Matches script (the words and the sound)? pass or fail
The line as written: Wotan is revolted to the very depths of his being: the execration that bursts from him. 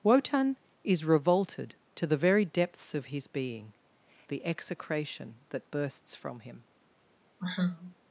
fail